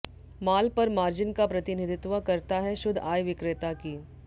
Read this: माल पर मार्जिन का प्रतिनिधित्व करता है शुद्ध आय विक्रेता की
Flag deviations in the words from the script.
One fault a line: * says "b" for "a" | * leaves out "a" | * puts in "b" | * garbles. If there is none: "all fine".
all fine